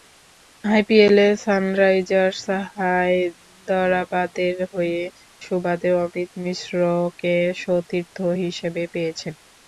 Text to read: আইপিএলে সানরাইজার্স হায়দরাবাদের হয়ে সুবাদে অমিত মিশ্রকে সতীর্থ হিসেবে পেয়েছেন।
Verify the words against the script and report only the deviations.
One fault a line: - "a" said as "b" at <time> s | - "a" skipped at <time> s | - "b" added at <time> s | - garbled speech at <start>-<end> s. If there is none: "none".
none